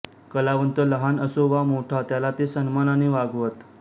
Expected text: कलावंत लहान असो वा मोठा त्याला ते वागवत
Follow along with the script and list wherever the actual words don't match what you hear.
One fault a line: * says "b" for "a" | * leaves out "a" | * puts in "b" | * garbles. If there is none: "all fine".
* puts in "सन्मानाने"